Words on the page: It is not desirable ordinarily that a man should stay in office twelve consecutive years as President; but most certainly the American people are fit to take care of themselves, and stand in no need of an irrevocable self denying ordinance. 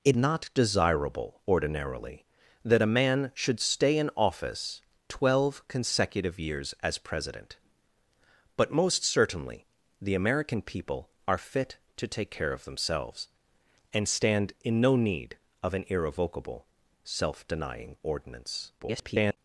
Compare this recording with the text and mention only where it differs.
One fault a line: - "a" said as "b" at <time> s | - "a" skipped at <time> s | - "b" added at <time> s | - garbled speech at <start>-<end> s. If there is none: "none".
- "is" skipped at 0.2 s
- garbled speech at 18.8-19.4 s